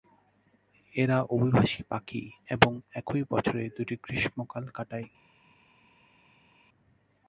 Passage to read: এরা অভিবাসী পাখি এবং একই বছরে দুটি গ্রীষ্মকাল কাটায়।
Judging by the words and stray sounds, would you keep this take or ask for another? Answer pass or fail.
pass